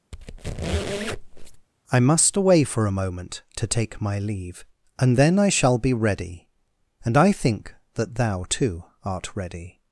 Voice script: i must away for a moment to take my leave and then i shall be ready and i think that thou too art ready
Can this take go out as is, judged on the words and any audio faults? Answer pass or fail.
fail